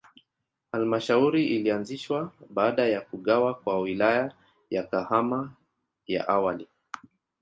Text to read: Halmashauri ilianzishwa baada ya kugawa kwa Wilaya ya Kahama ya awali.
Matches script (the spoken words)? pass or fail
pass